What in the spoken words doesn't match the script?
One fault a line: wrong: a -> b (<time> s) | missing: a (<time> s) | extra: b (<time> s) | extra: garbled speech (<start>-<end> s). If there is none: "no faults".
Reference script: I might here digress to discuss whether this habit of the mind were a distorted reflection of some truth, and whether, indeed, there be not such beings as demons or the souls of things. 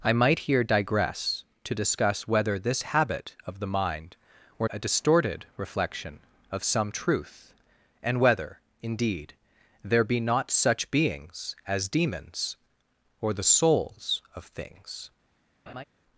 no faults